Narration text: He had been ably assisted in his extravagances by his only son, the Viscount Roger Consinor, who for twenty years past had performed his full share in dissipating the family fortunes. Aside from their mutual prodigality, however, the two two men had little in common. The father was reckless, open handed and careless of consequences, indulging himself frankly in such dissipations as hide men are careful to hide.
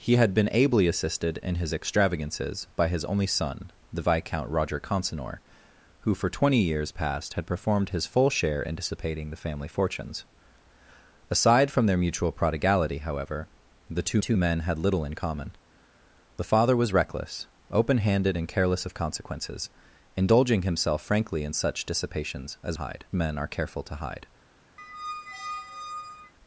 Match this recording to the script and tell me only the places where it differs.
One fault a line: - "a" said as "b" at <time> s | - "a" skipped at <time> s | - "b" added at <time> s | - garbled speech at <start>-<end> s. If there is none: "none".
none